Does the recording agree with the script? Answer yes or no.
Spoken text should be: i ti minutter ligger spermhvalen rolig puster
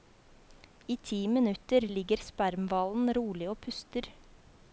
no